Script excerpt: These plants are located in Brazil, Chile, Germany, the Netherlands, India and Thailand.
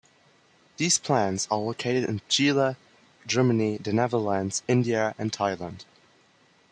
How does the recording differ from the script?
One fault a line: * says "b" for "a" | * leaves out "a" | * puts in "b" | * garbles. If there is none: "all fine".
* leaves out "Brazil"